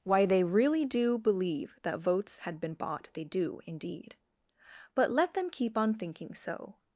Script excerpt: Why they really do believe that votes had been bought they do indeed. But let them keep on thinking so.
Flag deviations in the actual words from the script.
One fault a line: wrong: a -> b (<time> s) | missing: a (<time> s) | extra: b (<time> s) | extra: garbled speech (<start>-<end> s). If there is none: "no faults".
no faults